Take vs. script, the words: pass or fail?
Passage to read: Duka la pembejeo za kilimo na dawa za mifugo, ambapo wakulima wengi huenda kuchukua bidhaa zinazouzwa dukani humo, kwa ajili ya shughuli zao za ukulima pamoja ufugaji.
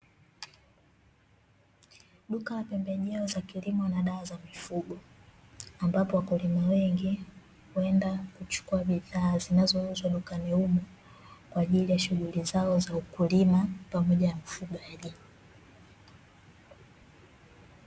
pass